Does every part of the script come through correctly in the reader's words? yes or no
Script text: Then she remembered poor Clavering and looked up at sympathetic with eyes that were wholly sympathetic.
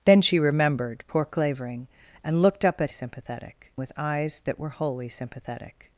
yes